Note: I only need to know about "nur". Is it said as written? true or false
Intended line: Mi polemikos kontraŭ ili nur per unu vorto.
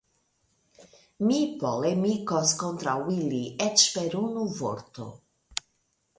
false